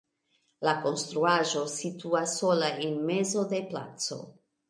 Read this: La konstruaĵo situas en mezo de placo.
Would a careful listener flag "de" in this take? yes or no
no